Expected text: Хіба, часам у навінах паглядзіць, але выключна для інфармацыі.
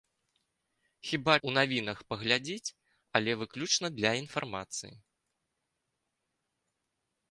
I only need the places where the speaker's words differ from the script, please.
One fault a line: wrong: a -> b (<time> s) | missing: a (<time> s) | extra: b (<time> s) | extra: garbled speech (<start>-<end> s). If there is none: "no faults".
missing: часам (1.4 s)